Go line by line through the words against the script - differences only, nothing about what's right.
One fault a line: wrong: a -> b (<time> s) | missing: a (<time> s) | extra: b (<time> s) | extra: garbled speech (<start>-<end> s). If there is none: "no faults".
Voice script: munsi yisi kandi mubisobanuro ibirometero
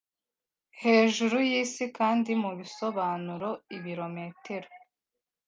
wrong: munsi -> hejuru (0.8 s)